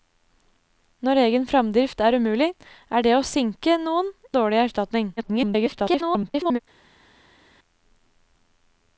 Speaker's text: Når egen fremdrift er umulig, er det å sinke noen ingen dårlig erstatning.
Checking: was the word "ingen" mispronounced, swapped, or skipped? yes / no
yes